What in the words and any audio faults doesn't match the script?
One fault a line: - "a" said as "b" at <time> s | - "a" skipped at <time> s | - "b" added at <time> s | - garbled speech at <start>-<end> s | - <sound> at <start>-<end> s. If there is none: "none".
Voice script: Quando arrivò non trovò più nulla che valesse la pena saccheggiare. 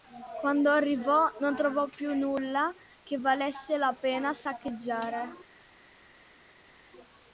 none